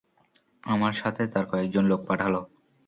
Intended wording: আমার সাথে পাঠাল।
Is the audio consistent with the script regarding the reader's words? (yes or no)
no